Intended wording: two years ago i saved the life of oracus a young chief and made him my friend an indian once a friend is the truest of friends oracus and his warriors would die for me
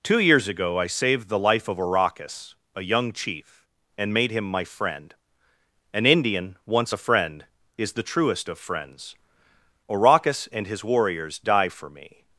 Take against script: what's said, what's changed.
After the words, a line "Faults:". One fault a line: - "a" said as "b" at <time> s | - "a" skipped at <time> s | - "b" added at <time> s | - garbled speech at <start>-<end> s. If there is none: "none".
two years ago i saved the life of oracus a young chief and made him my friend an indian once a friend is the truest of friends oracus and his warriors die for me
Faults:
- "would" skipped at 11.4 s